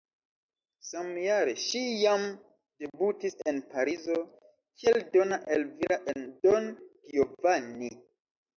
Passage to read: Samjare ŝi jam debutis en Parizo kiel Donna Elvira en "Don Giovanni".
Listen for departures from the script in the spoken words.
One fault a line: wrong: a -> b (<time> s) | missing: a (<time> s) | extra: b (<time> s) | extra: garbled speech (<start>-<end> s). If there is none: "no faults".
no faults